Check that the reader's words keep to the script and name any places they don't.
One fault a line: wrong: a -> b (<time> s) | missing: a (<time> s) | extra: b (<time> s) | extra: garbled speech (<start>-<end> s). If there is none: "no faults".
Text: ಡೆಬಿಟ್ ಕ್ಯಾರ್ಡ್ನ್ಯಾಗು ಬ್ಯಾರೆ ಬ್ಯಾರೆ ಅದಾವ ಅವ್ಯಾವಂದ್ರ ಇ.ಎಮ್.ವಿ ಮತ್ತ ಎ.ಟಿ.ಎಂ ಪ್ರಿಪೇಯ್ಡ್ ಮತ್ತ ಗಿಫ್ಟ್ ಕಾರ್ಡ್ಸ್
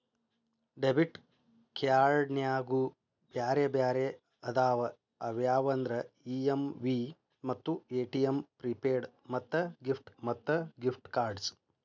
extra: ಮತ್ತ ಗಿಫ್ಟ್ (10.2 s)